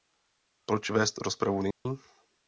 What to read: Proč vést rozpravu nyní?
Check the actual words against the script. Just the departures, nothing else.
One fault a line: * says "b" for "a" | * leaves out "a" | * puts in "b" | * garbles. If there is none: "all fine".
all fine